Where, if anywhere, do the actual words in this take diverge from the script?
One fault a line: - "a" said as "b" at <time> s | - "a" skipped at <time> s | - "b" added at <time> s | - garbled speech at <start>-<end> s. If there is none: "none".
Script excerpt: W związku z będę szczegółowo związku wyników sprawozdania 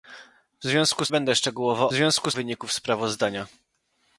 none